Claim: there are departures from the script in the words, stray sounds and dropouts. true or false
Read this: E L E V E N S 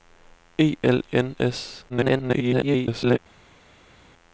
true